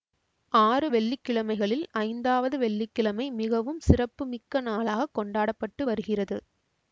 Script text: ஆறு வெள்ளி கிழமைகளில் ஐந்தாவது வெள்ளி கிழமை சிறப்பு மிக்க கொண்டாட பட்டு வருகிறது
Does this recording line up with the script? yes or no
no